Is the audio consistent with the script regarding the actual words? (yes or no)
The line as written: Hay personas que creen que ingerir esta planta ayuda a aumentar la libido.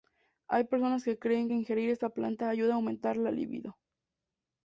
yes